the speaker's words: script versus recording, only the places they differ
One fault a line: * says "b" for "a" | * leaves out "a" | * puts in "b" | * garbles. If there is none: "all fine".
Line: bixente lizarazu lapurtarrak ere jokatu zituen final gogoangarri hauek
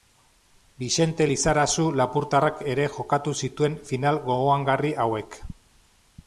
all fine